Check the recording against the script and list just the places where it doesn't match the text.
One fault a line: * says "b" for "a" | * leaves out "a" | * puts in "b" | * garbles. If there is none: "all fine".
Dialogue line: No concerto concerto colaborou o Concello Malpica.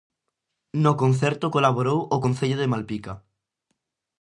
* leaves out "concerto"
* puts in "de"